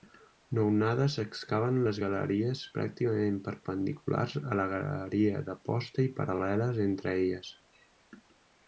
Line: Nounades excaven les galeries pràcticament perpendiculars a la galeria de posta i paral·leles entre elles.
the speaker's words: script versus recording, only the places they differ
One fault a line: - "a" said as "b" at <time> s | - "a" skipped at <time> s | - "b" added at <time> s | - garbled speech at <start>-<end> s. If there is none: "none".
none